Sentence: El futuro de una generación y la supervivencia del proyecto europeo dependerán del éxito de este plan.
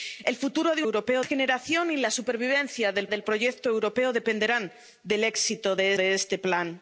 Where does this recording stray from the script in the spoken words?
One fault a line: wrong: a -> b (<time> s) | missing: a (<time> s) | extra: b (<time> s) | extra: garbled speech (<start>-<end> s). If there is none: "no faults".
wrong: una -> europeo (0.8 s)
extra: del (3.1 s)
extra: de (5.9 s)